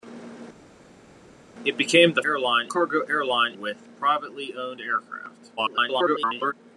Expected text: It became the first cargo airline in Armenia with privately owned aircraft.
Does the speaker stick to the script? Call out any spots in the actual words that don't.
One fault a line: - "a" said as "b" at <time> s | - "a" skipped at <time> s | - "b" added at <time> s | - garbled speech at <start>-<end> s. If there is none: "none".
- "first" said as "airline" at 2.2 s
- "in Armenia" skipped at 3.5 s
- garbled speech at 5.6-6.5 s